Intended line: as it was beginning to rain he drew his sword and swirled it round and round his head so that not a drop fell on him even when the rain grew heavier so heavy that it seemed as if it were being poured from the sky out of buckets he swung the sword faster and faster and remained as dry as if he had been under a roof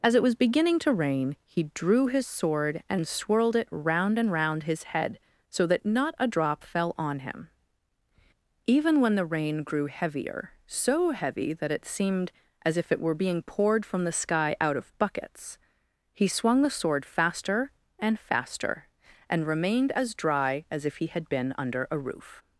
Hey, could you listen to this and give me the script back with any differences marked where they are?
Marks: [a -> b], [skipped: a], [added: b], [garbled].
as it was beginning to rain he drew his sword and swirled it round and round his head so that not a drop fell on him even when the rain grew heavier so heavy that it seemed as if it were being poured from the sky out of buckets he swung the sword faster and faster and remained as dry as if he had been under a roof